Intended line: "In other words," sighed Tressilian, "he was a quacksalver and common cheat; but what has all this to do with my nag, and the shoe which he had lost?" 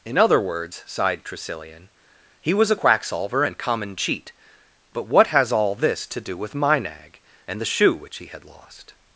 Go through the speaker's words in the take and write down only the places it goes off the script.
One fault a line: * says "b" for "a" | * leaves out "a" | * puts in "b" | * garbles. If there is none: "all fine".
all fine